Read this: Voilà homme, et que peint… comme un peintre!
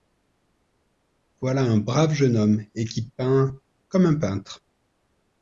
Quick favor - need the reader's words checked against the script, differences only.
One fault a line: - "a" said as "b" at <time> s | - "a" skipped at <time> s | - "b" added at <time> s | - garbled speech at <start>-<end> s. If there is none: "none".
- "un brave jeune" added at 1.6 s
- "que" said as "qui" at 2.9 s